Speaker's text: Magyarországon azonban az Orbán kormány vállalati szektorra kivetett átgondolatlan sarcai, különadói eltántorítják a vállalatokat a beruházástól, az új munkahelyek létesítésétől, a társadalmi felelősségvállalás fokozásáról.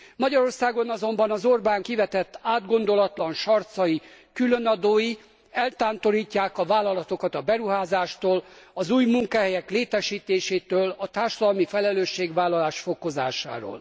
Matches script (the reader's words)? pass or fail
fail